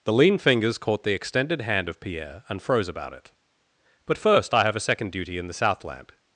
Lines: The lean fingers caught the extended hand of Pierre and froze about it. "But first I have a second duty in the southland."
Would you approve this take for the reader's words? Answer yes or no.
yes